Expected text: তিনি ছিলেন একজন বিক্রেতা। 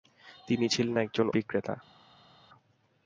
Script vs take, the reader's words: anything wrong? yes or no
no